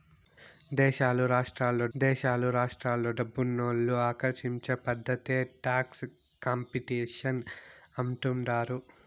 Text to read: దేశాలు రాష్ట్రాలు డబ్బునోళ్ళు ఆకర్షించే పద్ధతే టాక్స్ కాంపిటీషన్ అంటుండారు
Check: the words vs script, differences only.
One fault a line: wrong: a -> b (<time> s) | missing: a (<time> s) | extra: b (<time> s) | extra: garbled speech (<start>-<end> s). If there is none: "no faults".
extra: దేశాలు రాష్ట్రాలు (1.9 s)